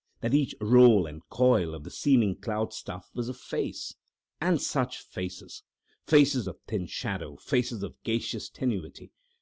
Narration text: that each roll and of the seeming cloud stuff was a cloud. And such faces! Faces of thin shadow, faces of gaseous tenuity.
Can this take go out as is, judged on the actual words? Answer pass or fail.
fail